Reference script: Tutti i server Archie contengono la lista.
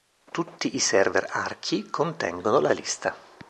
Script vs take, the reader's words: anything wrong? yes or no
no